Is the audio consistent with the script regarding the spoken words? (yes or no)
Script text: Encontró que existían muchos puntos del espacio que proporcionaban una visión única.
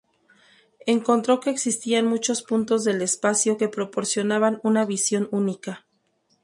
yes